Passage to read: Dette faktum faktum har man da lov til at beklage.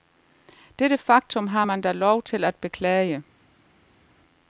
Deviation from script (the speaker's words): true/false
true